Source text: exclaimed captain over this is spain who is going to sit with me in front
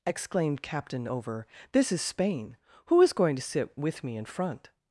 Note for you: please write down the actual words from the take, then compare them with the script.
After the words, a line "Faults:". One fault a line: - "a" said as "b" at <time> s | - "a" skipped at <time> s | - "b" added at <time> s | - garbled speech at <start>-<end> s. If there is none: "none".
exclaimed captain over this is spain who is going to sit with me in front
Faults:
none